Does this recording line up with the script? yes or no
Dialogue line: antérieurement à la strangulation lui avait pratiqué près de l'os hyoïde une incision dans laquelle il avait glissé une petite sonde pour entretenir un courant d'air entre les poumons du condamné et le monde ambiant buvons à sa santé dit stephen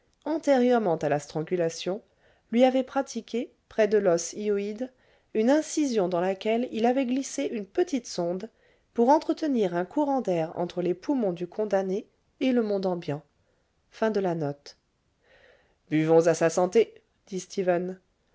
yes